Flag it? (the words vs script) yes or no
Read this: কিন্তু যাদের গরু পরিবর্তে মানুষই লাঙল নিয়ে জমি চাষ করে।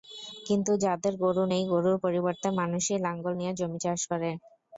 yes